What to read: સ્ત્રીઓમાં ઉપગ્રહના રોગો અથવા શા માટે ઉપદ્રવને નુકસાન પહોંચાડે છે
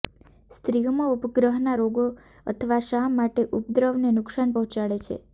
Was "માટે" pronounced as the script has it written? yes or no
yes